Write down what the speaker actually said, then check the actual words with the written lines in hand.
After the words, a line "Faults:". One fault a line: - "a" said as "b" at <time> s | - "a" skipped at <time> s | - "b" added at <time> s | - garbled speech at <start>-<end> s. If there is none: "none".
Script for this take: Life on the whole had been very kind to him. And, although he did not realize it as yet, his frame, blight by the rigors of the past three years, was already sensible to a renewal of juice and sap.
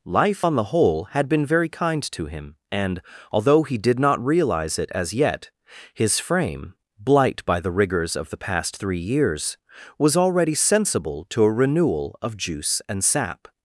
Life on the whole had been very kind to him. And, although he did not realize it as yet, his frame, blight by the rigors of the past three years, was already sensible to a renewal of juice and sap.
Faults:
none